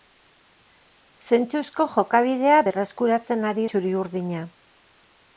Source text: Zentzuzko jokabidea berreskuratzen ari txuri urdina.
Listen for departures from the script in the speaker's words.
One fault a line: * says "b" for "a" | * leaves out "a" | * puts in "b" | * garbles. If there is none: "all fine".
all fine